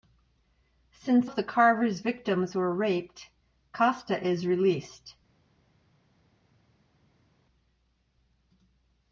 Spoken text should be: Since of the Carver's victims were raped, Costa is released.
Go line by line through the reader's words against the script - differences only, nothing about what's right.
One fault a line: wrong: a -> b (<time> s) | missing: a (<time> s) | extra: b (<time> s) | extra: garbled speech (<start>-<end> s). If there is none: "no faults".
no faults